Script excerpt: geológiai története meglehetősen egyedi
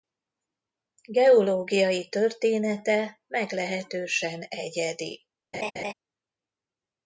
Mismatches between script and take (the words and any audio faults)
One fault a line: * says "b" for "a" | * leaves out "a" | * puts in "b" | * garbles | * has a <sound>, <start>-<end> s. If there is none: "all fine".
* has a laugh, 5.5-5.9 s